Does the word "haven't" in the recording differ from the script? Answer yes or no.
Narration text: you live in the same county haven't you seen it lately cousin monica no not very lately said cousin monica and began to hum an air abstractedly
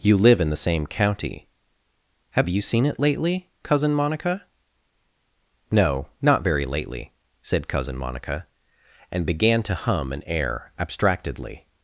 yes